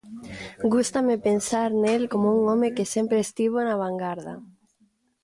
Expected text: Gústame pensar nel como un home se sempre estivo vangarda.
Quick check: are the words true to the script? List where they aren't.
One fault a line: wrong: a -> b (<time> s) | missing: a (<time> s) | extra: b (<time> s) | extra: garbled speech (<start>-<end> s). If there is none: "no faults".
wrong: se -> que (2.8 s)
extra: na (3.6 s)